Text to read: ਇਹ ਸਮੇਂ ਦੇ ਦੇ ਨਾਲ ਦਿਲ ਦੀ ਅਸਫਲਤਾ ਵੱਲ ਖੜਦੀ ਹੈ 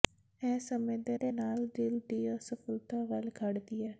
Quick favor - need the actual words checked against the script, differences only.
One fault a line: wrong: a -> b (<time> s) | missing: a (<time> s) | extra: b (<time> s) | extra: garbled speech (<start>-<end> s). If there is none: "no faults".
no faults